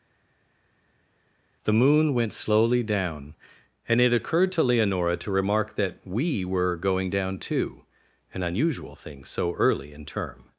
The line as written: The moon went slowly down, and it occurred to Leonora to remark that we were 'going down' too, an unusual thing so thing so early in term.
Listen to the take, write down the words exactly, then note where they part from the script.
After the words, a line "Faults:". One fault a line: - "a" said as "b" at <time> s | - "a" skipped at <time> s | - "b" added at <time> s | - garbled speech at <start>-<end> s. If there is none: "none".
The moon went slowly down, and it occurred to Leonora to remark that we were 'going down' too, an unusual thing so early in term.
Faults:
- "thing so" skipped at 9.5 s